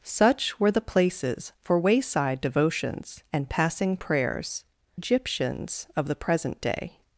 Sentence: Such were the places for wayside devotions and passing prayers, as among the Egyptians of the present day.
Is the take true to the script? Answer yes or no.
no